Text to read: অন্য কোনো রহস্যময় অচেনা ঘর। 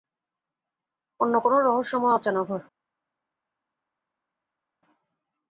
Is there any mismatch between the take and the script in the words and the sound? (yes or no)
no